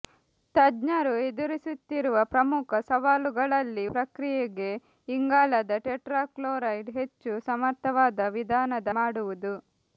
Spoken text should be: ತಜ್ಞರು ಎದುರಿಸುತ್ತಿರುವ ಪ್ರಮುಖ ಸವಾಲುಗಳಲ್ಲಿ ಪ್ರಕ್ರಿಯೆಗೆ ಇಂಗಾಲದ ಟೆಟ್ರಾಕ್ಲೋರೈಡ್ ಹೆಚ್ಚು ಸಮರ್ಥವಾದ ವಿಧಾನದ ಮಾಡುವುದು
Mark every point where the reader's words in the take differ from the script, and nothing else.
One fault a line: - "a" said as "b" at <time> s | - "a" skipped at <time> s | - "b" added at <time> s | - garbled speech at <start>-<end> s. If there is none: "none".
none